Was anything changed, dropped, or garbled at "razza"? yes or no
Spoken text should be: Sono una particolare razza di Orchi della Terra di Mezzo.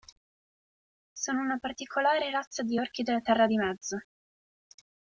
no